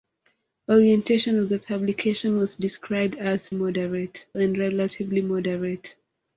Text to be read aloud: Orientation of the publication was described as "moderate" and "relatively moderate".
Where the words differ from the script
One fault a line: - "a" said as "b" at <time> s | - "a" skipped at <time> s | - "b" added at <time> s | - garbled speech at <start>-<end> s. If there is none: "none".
none